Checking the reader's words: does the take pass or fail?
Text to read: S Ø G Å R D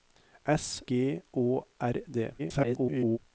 fail